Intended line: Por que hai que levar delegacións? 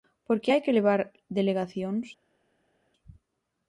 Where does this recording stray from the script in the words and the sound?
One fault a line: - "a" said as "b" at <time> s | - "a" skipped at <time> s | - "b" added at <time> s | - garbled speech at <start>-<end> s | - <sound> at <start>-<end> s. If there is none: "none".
none